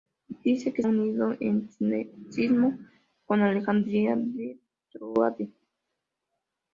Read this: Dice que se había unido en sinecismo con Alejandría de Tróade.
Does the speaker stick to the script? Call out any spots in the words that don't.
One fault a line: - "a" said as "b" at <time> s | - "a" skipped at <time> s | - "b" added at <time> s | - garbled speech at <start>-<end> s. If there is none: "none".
- "se había" skipped at 0.8 s